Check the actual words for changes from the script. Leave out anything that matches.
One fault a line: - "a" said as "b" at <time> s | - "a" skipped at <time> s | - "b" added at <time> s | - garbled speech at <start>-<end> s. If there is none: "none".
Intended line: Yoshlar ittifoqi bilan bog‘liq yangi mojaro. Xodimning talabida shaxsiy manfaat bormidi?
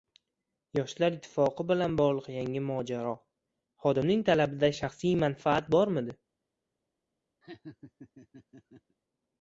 none